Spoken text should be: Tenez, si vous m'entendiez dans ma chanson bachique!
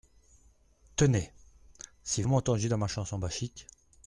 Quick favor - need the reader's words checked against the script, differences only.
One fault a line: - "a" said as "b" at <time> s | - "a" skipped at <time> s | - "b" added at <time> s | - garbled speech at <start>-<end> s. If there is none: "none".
- "vous" skipped at 2.2 s